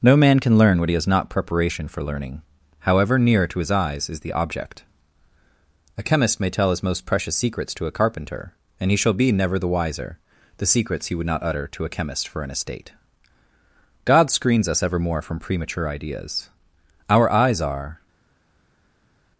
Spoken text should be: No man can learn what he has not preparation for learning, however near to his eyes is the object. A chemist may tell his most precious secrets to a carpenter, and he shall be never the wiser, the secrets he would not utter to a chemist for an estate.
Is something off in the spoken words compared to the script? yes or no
yes